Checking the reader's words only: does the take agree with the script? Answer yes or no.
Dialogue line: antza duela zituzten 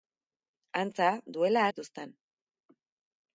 yes